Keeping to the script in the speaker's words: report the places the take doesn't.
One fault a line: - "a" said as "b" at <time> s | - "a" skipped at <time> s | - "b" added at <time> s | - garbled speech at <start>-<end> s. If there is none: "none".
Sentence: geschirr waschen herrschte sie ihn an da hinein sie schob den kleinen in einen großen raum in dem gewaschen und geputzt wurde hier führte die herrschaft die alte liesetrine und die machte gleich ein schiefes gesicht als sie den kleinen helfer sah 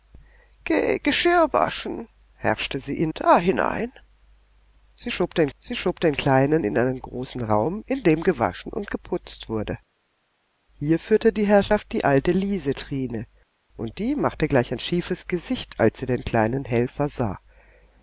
- "an" skipped at 3.1 s
- "sie schob den" added at 5.6 s